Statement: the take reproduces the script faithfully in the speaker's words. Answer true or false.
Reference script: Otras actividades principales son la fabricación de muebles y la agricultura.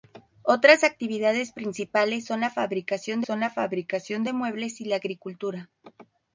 false